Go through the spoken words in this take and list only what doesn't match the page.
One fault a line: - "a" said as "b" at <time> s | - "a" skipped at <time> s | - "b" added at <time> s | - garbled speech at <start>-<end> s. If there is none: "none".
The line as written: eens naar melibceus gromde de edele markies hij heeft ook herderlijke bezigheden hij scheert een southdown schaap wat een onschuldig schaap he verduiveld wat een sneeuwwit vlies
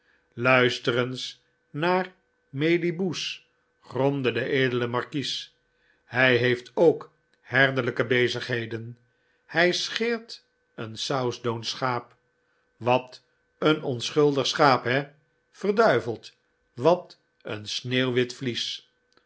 none